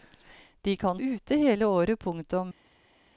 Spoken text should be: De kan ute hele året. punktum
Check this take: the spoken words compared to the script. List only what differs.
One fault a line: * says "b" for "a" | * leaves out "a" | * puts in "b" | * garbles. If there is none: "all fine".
all fine